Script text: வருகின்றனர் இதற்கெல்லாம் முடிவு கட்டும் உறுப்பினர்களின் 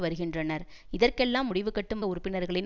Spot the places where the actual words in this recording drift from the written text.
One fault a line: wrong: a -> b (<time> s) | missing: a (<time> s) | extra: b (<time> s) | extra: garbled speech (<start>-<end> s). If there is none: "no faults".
no faults